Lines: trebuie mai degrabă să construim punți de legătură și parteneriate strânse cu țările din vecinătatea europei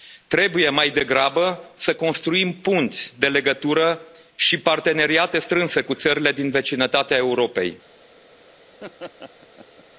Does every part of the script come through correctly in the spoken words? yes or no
yes